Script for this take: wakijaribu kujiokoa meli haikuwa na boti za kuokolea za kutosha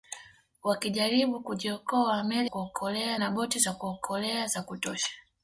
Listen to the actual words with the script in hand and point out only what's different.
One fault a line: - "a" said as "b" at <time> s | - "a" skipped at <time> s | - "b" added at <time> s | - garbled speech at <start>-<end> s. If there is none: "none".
- "haikuwa" said as "kuokolea" at 2.4 s